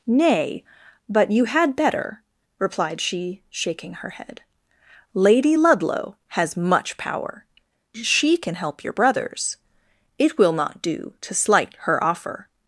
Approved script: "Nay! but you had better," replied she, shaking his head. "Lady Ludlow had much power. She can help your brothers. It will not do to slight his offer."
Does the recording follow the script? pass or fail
fail